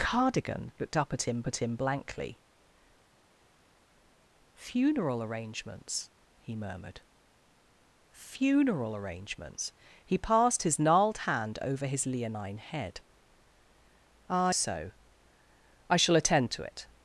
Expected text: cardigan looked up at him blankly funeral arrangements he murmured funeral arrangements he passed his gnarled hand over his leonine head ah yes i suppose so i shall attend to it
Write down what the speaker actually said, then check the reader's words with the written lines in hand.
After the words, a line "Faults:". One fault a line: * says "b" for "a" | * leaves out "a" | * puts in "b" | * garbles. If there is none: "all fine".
cardigan looked up at him at him blankly funeral arrangements he murmured funeral arrangements he passed his gnarled hand over his leonine head ah so i shall attend to it
Faults:
* puts in "at him"
* leaves out "yes i suppose"